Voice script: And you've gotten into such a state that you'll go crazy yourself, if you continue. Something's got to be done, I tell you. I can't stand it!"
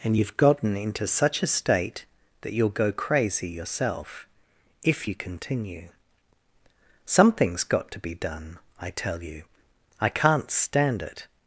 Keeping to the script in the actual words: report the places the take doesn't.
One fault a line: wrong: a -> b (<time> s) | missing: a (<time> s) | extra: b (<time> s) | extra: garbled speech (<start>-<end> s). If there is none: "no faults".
no faults